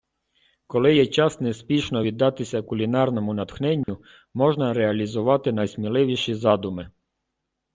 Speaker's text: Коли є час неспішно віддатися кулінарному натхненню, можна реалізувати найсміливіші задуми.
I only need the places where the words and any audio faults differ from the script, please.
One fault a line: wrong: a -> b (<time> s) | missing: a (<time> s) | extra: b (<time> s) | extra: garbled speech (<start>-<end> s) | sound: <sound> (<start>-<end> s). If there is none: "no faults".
sound: dropout (3.8-3.9 s)